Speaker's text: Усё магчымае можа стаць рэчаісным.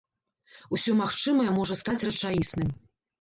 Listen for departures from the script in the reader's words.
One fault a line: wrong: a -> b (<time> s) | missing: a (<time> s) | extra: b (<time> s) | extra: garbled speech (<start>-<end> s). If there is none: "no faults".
no faults